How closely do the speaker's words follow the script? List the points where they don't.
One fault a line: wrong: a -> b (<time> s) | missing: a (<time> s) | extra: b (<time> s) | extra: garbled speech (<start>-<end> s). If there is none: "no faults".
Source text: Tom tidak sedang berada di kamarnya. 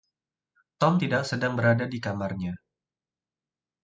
no faults